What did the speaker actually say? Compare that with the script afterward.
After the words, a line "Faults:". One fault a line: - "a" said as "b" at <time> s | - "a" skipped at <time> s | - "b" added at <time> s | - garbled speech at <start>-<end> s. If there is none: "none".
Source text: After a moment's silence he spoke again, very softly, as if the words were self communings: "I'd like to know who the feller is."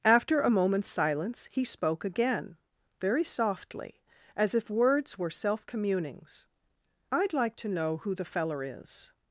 After a moment's silence he spoke again, very softly, as if words were self communings: "I'd like to know who the feller is."
Faults:
- "the" skipped at 4.7 s